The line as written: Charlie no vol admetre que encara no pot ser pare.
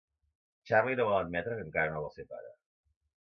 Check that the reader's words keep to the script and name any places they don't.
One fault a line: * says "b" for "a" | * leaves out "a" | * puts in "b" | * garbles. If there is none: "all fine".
* says "vol" for "pot"